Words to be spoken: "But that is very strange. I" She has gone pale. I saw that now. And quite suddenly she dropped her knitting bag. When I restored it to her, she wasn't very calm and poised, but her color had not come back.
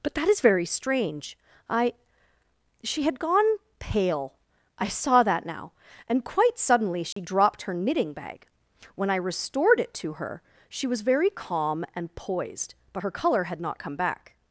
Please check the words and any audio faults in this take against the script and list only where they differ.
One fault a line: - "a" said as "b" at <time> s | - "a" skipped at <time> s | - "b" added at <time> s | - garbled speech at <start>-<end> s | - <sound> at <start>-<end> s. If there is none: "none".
- "has" said as "had" at 3.0 s
- dropout at 7.1-7.2 s
- "wasn't" said as "was" at 10.9 s